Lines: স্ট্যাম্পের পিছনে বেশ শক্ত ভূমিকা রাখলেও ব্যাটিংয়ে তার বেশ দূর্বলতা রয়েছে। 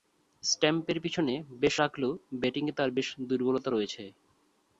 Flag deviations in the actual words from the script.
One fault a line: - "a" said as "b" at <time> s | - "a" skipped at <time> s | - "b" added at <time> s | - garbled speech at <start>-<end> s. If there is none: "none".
- "শক্ত ভূমিকা" skipped at 1.7 s